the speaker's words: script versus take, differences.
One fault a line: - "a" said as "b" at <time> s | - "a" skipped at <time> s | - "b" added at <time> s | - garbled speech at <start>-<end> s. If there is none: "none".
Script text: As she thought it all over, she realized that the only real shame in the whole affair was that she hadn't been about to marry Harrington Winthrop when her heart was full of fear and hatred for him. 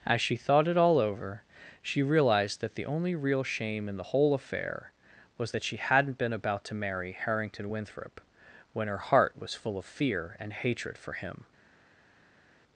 none